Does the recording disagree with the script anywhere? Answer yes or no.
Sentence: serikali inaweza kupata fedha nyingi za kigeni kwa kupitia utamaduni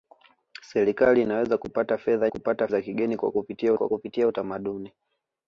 yes